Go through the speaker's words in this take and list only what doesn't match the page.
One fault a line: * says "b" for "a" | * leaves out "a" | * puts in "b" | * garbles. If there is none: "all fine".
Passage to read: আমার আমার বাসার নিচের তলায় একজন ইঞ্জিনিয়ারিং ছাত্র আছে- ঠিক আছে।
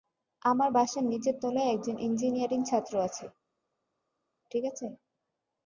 * leaves out "আমার"